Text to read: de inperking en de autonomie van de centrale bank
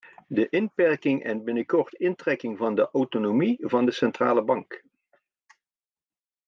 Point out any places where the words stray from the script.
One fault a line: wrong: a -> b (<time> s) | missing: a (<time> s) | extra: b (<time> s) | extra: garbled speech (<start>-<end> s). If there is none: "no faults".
extra: binnenkort intrekking van (1.4 s)